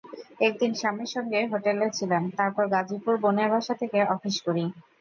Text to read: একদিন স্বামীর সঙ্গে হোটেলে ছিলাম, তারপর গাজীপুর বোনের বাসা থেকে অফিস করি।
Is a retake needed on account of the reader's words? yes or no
no